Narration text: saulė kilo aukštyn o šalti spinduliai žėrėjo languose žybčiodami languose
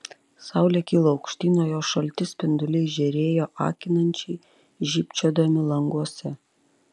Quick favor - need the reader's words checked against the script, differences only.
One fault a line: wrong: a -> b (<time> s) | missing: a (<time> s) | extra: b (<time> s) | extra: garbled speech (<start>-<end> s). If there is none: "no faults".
extra: jos (1.7 s)
wrong: languose -> akinančiai (3.7 s)